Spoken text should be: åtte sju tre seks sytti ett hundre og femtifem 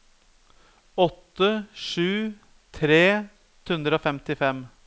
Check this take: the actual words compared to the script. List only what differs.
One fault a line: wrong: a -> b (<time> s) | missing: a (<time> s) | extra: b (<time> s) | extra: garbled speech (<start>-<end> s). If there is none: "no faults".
missing: seks sytti ett (3.3 s)